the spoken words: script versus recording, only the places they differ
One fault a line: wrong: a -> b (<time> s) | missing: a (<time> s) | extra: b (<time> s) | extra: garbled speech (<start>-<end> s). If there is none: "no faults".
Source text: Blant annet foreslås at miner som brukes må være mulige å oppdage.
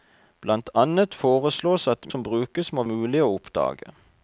missing: miner (2.1 s)
missing: være (2.9 s)